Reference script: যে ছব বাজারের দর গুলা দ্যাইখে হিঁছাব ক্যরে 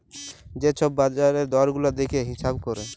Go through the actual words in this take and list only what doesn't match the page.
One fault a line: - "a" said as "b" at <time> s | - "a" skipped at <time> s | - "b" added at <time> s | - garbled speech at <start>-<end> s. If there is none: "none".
none